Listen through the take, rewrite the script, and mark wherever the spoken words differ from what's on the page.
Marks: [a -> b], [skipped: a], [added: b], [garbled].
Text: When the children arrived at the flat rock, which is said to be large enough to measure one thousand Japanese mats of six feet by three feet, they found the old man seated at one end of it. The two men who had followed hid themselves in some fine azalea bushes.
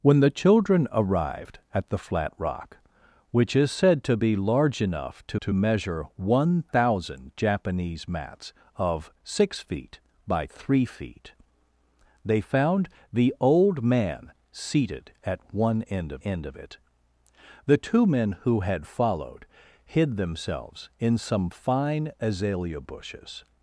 When the children arrived at the flat rock, which is said to be large enough to [added: to] measure one thousand Japanese mats of six feet by three feet, they found the old man seated at one end of [added: end of] it. The two men who had followed hid themselves in some fine azalea bushes.